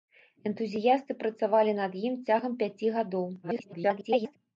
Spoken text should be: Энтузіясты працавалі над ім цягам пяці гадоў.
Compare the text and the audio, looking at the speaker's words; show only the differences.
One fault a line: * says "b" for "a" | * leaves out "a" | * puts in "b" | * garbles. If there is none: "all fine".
* garbles